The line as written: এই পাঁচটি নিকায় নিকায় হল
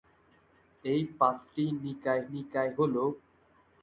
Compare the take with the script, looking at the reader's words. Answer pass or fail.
pass